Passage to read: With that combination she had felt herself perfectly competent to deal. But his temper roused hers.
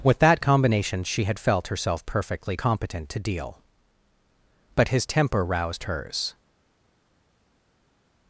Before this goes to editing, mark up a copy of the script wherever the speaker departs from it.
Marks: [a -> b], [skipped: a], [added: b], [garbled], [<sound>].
With that combination she had felt herself perfectly competent to deal. But his temper roused hers.